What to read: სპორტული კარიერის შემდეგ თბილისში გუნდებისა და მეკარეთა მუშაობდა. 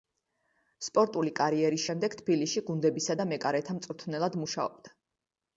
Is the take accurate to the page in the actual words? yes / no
no